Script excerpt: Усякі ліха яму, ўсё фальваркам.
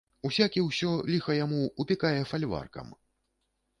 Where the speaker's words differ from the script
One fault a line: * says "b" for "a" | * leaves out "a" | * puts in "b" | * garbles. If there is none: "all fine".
* puts in "ўсё"
* says "упікае" for "ўсё"